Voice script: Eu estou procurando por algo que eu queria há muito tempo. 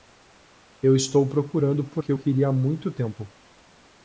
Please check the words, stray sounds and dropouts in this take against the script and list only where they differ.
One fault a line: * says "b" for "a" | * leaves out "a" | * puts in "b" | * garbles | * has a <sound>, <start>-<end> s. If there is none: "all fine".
* leaves out "algo"